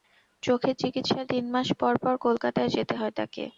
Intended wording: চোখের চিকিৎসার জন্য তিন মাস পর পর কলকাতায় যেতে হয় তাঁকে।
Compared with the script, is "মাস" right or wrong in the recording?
right